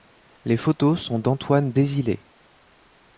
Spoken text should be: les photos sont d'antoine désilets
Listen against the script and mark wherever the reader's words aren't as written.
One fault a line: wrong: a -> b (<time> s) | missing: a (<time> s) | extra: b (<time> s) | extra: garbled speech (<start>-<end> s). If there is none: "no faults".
no faults